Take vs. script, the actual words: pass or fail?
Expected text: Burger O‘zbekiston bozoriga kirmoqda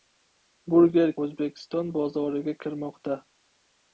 pass